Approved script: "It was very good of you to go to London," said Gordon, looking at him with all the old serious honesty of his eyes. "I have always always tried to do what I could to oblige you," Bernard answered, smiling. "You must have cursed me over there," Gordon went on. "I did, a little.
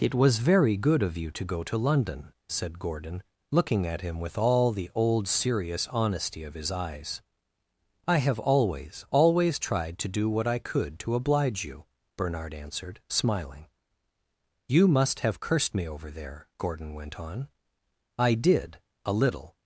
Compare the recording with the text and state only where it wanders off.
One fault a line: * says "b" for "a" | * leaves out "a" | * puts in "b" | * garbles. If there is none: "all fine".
all fine